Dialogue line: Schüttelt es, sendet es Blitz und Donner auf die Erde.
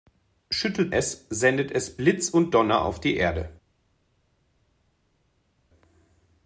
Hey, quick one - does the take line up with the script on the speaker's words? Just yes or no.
yes